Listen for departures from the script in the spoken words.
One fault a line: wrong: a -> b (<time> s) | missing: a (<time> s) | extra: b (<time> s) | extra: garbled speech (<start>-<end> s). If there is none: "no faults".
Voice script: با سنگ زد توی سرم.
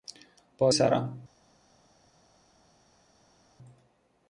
missing: سنگ زد توی (0.7 s)